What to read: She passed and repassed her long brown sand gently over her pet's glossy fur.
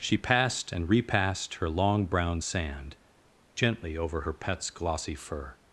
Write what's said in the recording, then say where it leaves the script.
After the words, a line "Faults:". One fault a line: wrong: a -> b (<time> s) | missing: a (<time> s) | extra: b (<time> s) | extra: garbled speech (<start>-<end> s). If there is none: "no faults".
She passed and repassed her long brown sand gently over her pet's glossy fur.
Faults:
no faults